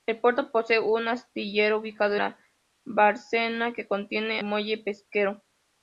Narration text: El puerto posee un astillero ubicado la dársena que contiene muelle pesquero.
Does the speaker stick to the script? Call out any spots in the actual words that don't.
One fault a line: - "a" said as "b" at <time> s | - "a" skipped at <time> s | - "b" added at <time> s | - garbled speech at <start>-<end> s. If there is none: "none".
none